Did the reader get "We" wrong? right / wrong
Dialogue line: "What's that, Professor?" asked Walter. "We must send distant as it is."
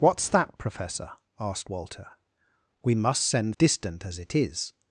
right